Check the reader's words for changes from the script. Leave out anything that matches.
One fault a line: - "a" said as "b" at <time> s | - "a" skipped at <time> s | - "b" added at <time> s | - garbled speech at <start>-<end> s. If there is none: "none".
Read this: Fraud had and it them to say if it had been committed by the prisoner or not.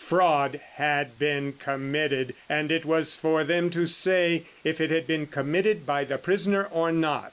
- "been committed" added at 1.2 s
- "was for" added at 2.9 s